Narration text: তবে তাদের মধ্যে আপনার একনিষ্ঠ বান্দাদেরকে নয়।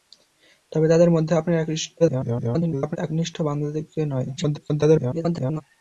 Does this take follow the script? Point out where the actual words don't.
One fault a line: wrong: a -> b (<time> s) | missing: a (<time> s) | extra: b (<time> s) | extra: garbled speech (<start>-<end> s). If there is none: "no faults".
extra: garbled speech (2.0-3.0 s)
extra: garbled speech (4.4-5.6 s)